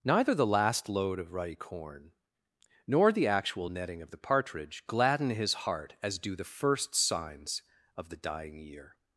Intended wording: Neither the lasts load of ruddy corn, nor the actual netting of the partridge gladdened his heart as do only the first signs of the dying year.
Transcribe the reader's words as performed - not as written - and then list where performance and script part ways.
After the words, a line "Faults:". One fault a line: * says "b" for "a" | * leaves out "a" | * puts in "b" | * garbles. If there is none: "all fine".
Neither the last load of ruddy corn, nor the actual netting of the partridge gladden his heart as do the first signs of the dying year.
Faults:
* says "last" for "lasts"
* says "gladden" for "gladdened"
* leaves out "only"